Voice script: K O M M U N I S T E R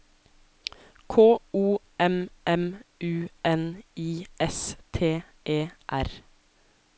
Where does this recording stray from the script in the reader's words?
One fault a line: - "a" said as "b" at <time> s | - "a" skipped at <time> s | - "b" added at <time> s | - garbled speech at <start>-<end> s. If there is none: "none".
none